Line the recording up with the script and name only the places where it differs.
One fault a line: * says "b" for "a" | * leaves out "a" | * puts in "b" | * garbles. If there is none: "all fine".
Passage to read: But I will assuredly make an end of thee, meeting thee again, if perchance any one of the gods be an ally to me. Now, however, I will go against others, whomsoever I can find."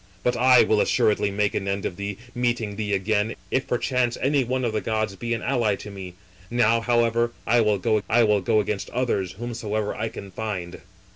* puts in "I will go"